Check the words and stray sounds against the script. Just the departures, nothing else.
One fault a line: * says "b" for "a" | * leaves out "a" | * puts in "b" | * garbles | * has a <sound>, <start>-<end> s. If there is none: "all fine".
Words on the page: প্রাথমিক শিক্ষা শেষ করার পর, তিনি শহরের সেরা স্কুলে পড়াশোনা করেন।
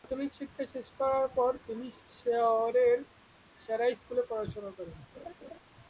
* has a laugh, 5.1-5.6 s